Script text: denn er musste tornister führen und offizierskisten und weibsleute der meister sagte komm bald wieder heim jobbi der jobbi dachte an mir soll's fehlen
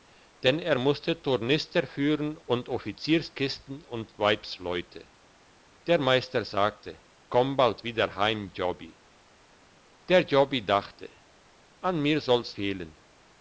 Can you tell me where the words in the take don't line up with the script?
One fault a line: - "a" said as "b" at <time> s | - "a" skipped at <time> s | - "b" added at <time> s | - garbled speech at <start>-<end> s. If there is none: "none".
none